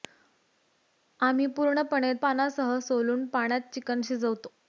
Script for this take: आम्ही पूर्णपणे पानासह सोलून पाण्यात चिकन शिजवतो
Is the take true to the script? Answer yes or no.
yes